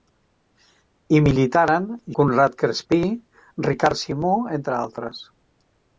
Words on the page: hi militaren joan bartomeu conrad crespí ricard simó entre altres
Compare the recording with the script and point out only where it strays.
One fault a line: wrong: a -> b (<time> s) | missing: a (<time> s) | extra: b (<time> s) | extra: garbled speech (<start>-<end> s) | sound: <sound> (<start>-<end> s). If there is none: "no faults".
missing: joan bartomeu (1.9 s)